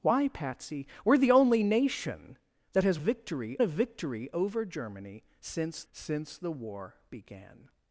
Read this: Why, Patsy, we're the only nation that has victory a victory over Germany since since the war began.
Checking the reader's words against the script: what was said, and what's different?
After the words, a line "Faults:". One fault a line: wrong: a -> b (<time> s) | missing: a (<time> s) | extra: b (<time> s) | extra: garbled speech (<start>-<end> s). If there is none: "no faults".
Why, Patsy, we're the only nation that has victory a victory over Germany since since the war began.
Faults:
no faults